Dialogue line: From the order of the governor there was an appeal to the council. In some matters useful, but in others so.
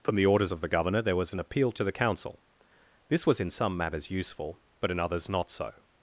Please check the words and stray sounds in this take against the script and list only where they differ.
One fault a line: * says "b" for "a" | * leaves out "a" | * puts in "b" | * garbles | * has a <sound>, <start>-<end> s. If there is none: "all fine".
* says "orders" for "order"
* puts in "This was"
* puts in "not"